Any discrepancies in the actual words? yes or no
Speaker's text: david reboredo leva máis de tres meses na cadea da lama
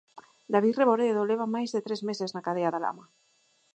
no